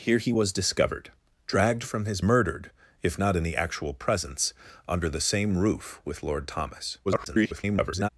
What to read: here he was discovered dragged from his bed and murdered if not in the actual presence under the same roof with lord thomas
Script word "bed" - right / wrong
wrong